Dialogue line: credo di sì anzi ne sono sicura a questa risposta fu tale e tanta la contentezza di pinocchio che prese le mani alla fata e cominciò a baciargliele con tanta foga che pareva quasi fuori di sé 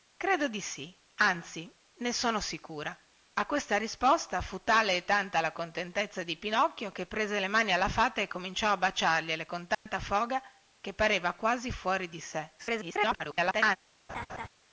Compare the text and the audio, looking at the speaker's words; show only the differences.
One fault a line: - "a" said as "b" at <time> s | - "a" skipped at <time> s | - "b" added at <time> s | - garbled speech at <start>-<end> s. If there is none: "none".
- garbled speech at 12.6-13.8 s